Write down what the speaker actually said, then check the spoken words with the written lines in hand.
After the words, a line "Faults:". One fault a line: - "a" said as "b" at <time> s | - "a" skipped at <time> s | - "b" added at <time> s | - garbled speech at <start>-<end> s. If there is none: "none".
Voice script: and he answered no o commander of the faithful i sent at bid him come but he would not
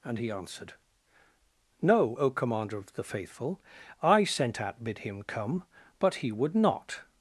and he answered no o commander of the faithful i sent at bid him come but he would not
Faults:
none